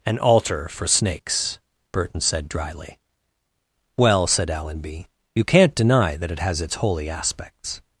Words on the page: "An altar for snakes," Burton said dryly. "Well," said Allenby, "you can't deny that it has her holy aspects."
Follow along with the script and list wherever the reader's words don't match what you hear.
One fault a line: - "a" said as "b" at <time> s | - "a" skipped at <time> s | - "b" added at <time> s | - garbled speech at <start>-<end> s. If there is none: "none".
- "her" said as "its" at 6.6 s